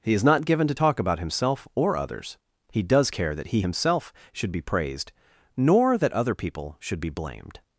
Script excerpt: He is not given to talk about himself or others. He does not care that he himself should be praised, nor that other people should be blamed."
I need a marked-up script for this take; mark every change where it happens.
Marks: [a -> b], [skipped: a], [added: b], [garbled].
He is not given to talk about himself or others. He does [skipped: not] care that he himself should be praised, nor that other people should be blamed."